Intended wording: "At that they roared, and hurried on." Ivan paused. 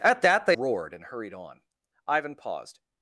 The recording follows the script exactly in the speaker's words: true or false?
true